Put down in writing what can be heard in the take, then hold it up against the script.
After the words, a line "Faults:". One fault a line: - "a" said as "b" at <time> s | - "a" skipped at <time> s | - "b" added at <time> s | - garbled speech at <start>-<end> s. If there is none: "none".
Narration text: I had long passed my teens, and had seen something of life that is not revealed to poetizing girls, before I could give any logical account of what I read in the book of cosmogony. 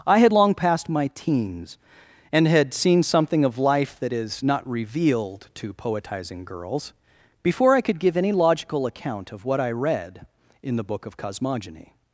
I had long passed my teens, and had seen something of life that is not revealed to poetizing girls, before I could give any logical account of what I read in the book of cosmogony.
Faults:
none